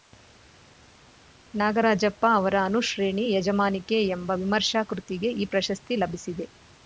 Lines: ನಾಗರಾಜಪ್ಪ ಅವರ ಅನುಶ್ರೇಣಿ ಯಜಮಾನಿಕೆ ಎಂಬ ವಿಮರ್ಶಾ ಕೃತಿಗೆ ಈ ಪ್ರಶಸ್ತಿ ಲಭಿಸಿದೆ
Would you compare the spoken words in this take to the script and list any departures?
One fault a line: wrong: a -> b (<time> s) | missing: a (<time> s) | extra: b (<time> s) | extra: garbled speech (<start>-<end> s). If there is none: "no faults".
no faults